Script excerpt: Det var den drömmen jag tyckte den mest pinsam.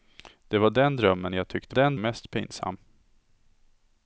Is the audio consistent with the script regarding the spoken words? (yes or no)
yes